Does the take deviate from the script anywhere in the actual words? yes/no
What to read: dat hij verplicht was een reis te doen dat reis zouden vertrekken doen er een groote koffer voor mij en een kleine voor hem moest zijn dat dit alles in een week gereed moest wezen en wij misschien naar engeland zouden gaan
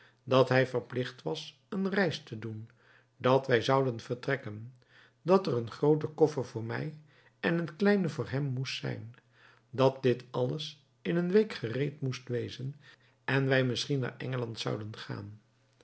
yes